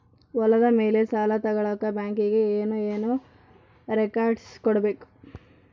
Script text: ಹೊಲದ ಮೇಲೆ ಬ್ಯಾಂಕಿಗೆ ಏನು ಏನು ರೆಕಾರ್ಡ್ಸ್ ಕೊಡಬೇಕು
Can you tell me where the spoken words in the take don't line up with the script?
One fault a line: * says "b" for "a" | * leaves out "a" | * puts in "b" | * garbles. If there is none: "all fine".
* puts in "ಸಾಲ ತಗಳಕ"